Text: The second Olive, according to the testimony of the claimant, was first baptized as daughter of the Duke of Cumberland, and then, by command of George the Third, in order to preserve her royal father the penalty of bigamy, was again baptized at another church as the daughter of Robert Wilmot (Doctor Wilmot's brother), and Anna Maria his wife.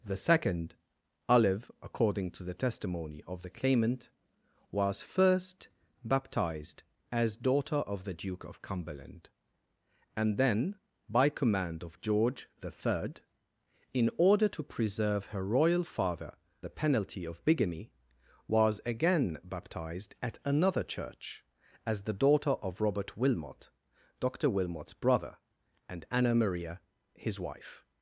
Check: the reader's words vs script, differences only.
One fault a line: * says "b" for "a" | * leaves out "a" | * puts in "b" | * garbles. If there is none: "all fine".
all fine